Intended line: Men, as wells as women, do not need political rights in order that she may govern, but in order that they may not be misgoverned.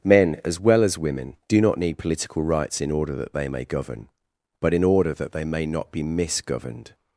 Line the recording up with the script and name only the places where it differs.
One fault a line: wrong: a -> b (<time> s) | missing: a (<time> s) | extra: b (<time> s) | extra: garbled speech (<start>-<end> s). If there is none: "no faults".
wrong: wells -> well (0.6 s)
wrong: she -> they (3.3 s)